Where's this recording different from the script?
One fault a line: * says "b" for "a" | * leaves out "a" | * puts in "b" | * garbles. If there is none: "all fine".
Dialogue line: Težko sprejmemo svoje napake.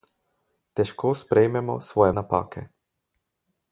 all fine